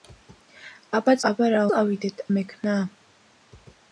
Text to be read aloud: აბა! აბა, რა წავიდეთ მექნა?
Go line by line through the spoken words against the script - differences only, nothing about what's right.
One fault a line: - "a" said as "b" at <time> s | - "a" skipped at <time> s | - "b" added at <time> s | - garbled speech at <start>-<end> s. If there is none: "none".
none